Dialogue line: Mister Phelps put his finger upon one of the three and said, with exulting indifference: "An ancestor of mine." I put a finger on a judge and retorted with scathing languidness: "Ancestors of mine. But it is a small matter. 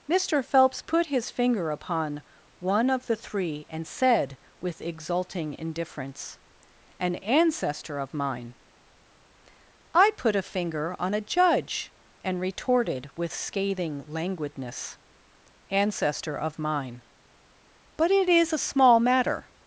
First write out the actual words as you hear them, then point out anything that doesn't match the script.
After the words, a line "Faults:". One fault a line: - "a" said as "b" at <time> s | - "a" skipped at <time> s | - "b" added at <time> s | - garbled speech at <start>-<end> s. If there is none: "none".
Mister Phelps put his finger upon one of the three and said, with exulting indifference: "An ancestor of mine." I put a finger on a judge and retorted with scathing languidness: "Ancestor of mine. But it is a small matter.
Faults:
- "Ancestors" said as "Ancestor" at 15.7 s